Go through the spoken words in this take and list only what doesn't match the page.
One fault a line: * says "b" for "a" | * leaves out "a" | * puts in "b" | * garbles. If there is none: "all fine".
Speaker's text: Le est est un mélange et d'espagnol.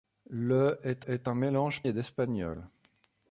all fine